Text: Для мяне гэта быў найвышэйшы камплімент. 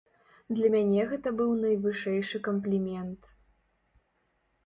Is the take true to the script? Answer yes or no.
yes